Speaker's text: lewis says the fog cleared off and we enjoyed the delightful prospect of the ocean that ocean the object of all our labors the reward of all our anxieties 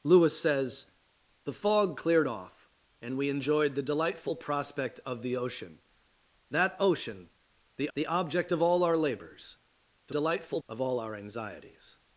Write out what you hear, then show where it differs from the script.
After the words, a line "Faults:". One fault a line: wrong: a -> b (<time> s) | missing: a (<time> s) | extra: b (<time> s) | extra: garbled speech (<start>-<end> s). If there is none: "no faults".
lewis says the fog cleared off and we enjoyed the delightful prospect of the ocean that ocean the the object of all our labors the delightful of all our anxieties
Faults:
extra: the (7.9 s)
wrong: reward -> delightful (10.1 s)